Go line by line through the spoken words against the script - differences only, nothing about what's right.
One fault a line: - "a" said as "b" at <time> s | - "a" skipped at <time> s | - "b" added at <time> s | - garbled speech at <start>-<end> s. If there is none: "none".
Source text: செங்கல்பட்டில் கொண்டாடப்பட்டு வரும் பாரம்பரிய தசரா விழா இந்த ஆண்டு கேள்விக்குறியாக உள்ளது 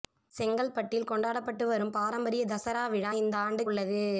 - "கேள்விக்குறியாக" skipped at 3.6 s